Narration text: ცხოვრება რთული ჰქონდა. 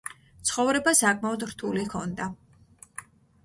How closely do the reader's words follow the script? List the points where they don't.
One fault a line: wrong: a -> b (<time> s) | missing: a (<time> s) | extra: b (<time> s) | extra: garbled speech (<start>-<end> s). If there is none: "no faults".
extra: საკმაოდ (1.0 s)